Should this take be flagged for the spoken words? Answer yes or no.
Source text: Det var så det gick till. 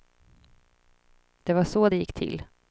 no